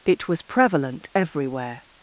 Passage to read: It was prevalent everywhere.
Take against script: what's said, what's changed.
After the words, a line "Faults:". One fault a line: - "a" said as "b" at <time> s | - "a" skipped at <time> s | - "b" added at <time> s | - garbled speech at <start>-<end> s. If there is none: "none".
It was prevalent everywhere.
Faults:
none